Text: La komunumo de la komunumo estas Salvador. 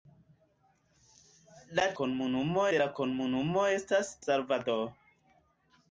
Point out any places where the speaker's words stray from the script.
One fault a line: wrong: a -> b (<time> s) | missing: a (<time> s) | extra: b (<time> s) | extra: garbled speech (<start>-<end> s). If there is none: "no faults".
no faults